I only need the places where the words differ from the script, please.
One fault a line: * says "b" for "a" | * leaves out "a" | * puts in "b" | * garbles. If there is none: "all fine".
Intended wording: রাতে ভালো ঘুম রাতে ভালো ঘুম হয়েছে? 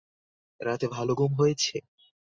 * leaves out "রাতে ভালো ঘুম"